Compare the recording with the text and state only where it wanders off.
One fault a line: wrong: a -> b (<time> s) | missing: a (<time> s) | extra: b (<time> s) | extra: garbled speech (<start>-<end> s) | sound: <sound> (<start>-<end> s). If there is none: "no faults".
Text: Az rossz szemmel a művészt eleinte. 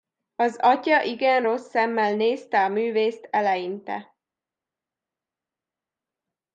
extra: atya igen (0.6 s)
extra: nézte (2.2 s)